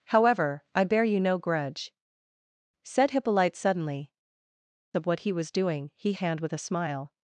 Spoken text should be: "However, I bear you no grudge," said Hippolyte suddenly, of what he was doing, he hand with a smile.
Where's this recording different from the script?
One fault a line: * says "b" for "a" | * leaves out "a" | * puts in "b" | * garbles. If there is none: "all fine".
all fine